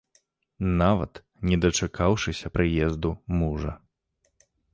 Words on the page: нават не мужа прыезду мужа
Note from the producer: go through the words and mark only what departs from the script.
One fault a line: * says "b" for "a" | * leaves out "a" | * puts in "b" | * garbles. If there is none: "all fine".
* says "дачакаўшыся" for "мужа"